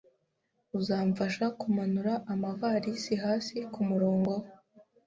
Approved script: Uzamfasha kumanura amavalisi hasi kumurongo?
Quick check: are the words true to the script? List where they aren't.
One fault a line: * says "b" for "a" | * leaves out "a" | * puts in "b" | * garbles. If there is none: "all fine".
all fine